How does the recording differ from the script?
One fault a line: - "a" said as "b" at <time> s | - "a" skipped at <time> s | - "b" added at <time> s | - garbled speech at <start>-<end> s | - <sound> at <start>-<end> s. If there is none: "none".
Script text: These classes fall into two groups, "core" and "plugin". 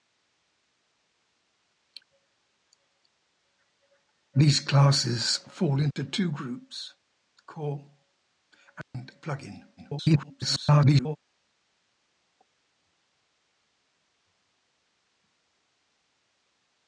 - dropout at 5.9-6.0 s
- dropout at 8.8-8.9 s
- garbled speech at 9.8-11.2 s